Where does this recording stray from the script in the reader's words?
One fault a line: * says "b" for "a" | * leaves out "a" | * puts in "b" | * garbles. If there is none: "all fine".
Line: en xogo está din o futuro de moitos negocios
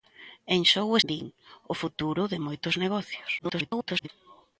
* leaves out "está"
* garbles